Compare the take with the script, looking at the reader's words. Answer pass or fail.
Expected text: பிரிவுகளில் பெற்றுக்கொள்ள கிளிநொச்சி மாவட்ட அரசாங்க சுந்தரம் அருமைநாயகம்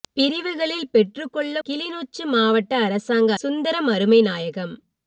pass